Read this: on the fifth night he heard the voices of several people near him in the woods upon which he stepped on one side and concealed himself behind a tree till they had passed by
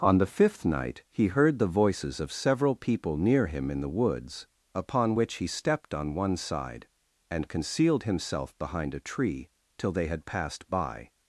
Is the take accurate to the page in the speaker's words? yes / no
yes